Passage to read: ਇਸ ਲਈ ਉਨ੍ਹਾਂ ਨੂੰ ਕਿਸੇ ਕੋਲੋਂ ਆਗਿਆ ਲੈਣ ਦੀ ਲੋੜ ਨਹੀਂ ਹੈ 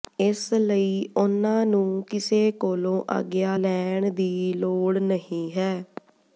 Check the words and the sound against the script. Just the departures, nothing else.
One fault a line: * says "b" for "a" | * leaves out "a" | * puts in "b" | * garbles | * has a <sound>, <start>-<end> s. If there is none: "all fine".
all fine